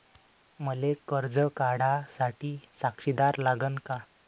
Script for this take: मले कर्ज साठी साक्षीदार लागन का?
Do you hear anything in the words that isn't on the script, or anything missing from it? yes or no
yes